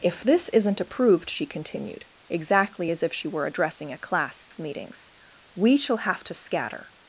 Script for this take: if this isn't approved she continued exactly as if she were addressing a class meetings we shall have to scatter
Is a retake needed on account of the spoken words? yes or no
no